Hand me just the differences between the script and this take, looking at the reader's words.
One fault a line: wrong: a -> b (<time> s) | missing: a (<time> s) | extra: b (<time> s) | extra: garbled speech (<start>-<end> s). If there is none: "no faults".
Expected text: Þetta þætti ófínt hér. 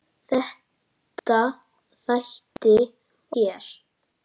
missing: ófínt (2.8 s)